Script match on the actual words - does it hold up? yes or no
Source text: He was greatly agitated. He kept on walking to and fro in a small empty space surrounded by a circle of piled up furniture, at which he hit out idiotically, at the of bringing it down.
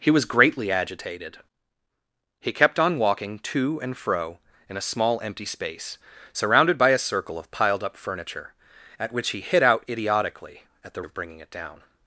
yes